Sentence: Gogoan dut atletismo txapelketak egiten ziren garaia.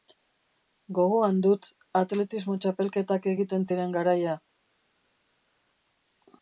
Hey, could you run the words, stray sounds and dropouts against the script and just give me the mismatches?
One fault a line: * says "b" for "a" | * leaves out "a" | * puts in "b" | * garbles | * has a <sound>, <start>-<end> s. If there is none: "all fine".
all fine